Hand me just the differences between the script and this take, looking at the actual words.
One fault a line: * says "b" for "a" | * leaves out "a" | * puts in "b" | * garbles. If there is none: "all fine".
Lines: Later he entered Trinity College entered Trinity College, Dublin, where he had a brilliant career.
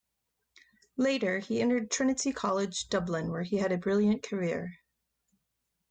* leaves out "entered Trinity College"